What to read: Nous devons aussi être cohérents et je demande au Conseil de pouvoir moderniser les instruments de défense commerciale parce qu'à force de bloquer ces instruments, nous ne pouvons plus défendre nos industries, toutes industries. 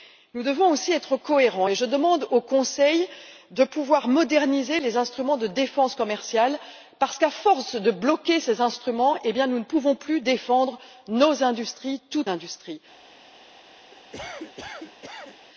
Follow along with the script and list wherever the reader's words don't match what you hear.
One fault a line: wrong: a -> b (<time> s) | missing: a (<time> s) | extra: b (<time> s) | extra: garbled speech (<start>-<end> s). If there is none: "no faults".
no faults